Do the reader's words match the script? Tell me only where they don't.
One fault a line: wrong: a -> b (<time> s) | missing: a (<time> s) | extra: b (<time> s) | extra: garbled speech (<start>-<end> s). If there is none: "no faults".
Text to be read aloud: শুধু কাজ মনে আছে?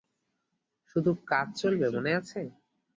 extra: চলবে (1.6 s)